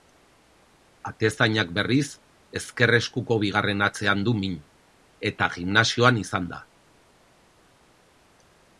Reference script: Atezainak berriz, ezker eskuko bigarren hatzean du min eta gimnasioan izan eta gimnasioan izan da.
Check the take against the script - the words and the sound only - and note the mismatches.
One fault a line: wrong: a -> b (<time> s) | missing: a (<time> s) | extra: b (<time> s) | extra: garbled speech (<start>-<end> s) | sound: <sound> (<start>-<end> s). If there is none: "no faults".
missing: eta gimnasioan izan (6.5 s)